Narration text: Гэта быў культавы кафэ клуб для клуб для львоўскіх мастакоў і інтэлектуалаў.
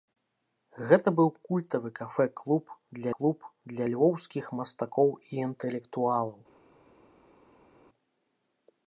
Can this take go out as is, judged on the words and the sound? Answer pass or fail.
pass